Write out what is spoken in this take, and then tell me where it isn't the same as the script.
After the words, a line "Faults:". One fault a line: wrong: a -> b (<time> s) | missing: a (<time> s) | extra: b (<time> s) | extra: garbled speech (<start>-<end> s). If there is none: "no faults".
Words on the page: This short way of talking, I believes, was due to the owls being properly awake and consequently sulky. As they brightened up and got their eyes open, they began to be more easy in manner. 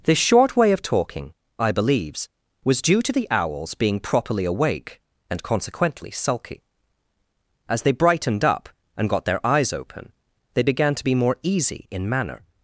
This short way of talking, I believes, was due to the owls being properly awake and consequently sulky. As they brightened up and got their eyes open, they began to be more easy in manner.
Faults:
no faults